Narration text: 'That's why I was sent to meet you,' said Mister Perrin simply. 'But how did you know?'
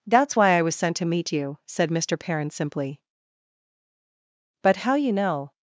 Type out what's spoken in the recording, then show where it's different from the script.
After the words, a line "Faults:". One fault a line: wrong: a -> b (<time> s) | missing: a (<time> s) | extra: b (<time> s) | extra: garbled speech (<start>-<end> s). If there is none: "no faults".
'That's why I was sent to meet you,' said Mister Perrin simply. 'But how you know?'
Faults:
missing: did (4.9 s)